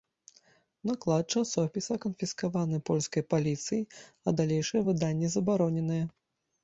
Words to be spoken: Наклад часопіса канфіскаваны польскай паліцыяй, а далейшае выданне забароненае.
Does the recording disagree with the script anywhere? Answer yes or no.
no